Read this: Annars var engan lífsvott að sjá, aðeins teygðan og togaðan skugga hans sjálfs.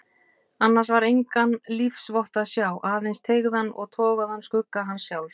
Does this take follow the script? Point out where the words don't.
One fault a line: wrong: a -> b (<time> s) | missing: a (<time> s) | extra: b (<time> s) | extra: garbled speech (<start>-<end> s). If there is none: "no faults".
no faults